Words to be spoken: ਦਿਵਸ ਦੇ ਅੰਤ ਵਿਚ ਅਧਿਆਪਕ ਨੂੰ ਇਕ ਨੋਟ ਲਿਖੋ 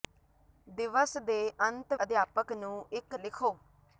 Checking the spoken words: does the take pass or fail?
fail